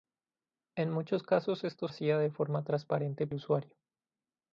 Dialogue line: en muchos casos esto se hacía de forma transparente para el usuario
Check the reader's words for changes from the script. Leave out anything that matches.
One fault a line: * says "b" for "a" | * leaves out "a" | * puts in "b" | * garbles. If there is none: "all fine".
* leaves out "se"
* leaves out "para el"